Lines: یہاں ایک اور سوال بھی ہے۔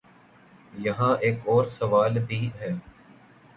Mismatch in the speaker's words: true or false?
false